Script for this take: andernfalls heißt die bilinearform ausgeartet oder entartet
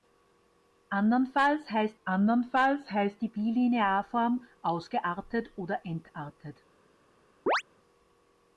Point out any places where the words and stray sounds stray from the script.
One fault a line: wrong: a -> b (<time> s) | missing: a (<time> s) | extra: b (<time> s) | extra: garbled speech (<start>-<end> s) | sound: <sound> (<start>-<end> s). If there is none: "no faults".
extra: andernfalls heißt (2.0 s)
sound: chirp (7.5-7.6 s)